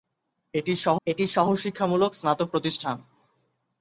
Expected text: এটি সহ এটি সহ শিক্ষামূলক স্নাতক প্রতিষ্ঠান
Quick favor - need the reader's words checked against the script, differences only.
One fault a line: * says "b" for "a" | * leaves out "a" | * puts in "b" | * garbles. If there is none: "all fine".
all fine